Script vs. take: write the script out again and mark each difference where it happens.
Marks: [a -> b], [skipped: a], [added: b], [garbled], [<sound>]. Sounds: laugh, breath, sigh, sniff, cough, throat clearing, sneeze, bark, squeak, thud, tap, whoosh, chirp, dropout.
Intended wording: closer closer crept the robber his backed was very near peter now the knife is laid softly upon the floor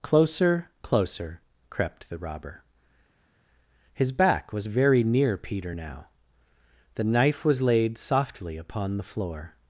closer closer crept the robber his [backed -> back] was very near peter now the knife [is -> was] laid softly upon the floor